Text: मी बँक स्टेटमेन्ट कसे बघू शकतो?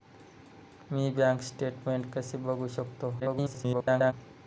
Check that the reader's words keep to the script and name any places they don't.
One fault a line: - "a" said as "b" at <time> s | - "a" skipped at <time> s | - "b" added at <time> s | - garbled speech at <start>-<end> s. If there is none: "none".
- garbled speech at 3.2-4.1 s